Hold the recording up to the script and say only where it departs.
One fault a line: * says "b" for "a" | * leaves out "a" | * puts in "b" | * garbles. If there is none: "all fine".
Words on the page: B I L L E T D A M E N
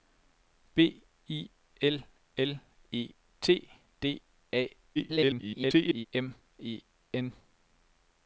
* garbles